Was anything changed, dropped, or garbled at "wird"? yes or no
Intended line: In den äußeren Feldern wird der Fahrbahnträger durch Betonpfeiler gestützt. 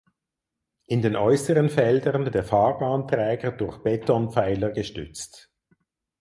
yes